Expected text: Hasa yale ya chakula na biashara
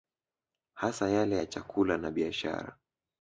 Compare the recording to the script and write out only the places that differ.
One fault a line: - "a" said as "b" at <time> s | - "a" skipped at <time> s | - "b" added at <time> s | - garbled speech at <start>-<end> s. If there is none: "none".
none